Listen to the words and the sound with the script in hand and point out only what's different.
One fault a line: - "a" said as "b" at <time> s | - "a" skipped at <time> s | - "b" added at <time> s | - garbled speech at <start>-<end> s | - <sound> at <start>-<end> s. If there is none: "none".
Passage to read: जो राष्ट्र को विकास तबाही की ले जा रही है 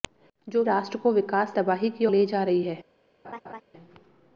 - laugh at 3.2-3.6 s